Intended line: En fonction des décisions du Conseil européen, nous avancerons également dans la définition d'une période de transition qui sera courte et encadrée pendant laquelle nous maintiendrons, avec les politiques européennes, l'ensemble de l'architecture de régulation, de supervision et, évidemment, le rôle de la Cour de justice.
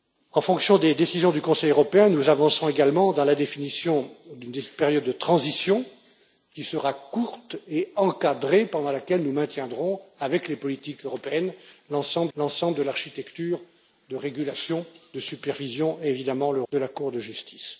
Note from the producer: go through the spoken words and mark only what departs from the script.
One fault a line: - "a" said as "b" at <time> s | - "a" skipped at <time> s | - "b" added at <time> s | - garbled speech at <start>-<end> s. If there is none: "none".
- "l'ensemble" added at 12.4 s
- "rôle" skipped at 16.6 s